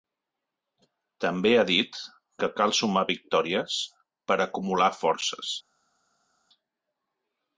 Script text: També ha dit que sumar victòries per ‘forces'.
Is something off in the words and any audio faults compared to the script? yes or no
yes